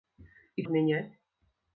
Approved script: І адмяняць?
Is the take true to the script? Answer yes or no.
yes